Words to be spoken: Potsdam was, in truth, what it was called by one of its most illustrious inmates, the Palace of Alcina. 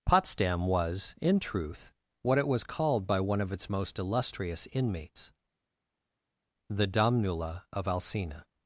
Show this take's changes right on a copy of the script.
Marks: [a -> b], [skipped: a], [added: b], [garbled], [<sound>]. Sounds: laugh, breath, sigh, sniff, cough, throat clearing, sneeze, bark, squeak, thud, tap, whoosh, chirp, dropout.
Potsdam was, in truth, what it was called by one of its most illustrious inmates, the [Palace -> Domnula] of Alcina.